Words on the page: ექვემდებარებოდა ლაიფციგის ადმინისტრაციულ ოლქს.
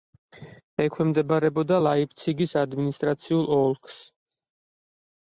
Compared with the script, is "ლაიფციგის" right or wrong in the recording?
right